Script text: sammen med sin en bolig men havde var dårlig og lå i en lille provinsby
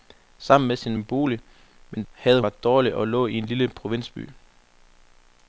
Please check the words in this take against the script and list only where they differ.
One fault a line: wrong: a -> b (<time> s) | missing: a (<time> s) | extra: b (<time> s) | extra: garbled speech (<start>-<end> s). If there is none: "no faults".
no faults